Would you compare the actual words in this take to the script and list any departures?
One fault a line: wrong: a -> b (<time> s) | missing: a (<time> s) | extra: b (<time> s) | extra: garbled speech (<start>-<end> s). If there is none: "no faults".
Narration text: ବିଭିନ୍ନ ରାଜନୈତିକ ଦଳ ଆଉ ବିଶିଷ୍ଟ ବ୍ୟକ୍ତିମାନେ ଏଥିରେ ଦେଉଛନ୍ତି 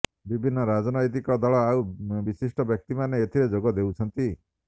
extra: ଯୋଗ (3.6 s)